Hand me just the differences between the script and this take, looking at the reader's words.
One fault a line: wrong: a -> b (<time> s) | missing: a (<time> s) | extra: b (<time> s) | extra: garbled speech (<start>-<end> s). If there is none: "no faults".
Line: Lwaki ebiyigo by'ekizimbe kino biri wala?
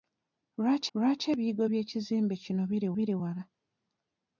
extra: lwaki (0.9 s)
extra: biri (3.0 s)